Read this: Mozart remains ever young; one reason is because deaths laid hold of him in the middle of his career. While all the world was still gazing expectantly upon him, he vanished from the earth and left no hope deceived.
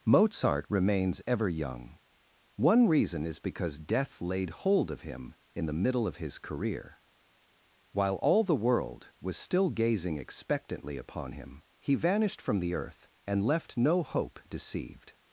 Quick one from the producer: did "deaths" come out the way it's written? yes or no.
no